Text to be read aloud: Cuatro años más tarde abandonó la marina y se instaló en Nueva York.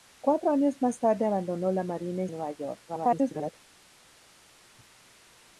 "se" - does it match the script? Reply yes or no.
no